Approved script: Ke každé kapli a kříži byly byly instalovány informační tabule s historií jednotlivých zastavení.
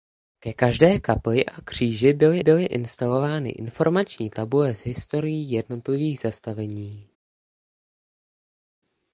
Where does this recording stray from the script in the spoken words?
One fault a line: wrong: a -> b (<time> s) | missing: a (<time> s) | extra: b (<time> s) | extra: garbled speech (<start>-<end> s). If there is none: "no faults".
no faults